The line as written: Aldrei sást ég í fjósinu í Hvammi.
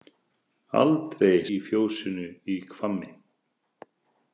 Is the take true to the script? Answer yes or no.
no